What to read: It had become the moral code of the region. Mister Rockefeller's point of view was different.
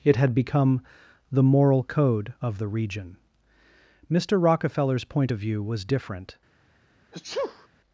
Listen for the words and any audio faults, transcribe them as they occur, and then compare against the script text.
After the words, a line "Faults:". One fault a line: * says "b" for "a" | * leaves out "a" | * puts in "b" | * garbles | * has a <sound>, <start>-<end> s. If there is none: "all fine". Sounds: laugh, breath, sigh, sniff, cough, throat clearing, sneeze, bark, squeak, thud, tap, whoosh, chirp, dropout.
It had become the moral code of the region. Mister Rockefeller's point of view was different.
Faults:
* has a sneeze, 7.1-7.7 s